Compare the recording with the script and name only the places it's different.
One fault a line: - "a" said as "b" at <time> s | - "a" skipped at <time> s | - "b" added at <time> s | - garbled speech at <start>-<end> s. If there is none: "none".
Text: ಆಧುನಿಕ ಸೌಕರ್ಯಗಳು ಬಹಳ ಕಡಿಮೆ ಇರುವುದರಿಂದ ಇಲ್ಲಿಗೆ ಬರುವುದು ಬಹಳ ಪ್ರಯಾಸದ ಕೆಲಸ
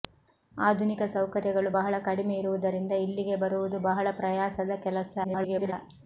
- garbled speech at 5.2-5.7 s